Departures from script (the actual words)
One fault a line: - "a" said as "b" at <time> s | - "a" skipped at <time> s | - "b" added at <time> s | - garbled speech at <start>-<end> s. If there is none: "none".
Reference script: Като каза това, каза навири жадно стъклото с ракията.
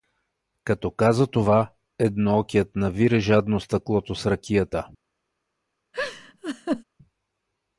- "каза" said as "едноокият" at 2.0 s